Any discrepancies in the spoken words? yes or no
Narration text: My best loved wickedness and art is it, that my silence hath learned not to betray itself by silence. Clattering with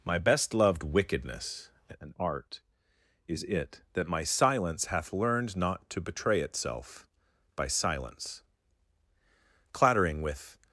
no